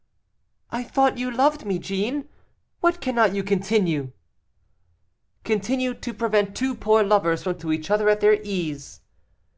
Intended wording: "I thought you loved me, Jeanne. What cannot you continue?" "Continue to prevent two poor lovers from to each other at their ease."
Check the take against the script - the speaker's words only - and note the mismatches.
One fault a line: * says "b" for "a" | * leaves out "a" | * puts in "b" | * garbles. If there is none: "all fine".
all fine